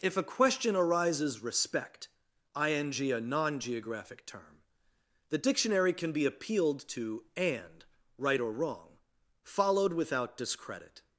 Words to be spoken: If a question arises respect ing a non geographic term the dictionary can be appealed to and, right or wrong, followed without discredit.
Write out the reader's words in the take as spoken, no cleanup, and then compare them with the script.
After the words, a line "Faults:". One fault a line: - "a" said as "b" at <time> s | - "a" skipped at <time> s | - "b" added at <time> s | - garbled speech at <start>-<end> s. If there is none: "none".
If a question arises respect ing a non geographic term the dictionary can be appealed to and, right or wrong, followed without discredit.
Faults:
none